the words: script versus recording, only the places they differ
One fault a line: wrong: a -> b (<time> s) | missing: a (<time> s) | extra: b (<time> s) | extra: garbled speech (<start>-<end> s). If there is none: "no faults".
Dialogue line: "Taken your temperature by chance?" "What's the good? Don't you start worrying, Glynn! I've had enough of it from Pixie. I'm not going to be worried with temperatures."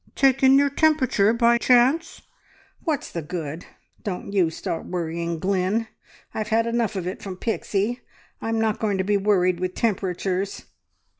no faults